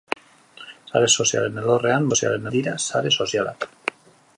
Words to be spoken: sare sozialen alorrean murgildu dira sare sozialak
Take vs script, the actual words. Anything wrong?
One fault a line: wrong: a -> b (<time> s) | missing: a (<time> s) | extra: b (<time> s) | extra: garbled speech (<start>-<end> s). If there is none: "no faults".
wrong: murgildu -> sozialen (2.1 s)